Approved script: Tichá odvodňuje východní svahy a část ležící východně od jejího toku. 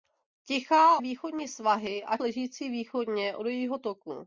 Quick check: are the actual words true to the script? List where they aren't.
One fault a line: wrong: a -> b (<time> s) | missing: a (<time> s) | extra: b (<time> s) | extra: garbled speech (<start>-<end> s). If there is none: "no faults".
missing: odvodňuje (1.0 s)
missing: část (2.2 s)